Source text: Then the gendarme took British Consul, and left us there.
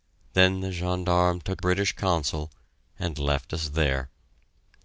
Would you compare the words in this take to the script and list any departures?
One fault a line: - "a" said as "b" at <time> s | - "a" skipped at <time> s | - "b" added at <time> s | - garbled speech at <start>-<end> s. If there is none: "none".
none